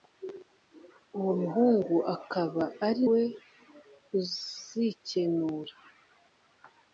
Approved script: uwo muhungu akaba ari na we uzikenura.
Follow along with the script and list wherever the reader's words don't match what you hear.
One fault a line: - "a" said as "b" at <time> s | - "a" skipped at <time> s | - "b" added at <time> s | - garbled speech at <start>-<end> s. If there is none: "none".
- "na" skipped at 3.0 s